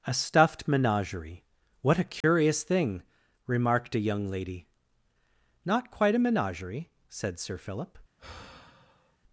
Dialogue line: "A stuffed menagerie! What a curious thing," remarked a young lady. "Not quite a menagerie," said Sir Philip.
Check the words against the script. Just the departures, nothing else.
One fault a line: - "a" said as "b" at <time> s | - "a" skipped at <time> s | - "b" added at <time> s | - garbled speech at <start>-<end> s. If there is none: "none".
none